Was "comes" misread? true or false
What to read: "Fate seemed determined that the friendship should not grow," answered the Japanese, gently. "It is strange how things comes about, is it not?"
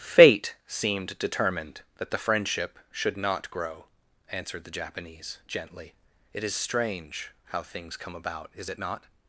true